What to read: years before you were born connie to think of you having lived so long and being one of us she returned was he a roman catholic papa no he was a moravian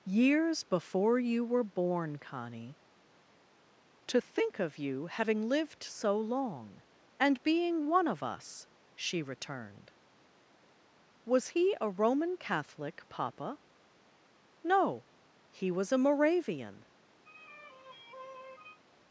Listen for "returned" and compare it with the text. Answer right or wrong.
right